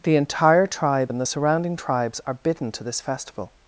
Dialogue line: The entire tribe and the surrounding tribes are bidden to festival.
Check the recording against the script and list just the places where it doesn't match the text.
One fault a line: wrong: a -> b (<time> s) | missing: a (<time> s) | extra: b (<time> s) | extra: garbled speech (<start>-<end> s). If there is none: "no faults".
extra: this (2.8 s)